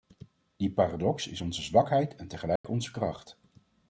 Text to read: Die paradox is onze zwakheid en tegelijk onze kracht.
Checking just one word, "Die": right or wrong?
right